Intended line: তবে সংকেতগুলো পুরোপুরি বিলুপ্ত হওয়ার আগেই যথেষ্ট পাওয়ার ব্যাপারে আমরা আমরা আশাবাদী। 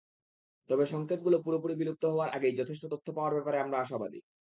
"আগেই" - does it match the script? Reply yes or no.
yes